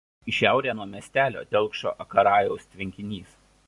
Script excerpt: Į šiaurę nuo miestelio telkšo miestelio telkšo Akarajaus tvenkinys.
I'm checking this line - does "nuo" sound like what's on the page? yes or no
yes